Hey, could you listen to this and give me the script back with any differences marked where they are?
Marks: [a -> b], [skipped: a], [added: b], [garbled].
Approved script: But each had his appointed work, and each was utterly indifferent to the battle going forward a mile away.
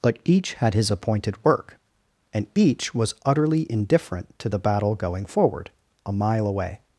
But each had his appointed work, and each was utterly indifferent to the battle going forward a mile away.